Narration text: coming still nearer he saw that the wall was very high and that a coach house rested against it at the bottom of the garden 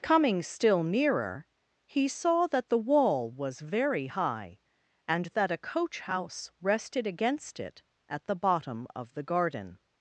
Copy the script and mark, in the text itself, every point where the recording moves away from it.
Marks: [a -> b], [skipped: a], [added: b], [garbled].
coming still nearer he saw that the wall was very high and that a coach house rested against it at the bottom of the garden